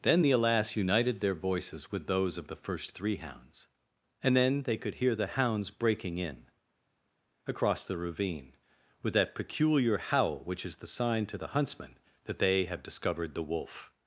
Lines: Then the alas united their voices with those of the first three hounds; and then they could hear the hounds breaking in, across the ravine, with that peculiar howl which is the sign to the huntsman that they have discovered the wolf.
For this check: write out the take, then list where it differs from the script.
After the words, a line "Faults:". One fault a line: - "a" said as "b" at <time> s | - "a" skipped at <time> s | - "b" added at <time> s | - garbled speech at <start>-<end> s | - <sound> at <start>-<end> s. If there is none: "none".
Then the alas united their voices with those of the first three hounds; and then they could hear the hounds breaking in, across the ravine, with that peculiar howl which is the sign to the huntsman that they have discovered the wolf.
Faults:
none